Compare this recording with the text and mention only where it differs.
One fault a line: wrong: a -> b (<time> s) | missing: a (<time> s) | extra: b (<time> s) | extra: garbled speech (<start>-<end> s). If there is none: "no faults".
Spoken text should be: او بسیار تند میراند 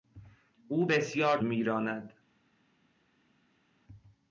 missing: تند (1.4 s)